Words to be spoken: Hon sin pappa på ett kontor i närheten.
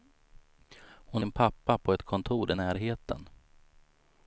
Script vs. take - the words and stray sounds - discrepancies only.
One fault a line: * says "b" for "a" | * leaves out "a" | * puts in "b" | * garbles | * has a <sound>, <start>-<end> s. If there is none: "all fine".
all fine